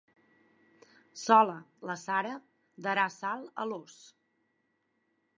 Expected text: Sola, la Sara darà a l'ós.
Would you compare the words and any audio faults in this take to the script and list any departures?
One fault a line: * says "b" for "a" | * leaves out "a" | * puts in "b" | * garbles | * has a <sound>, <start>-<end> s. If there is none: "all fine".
* puts in "sal"